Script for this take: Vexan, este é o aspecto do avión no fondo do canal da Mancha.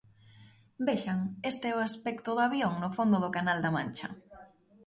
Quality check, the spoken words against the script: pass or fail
pass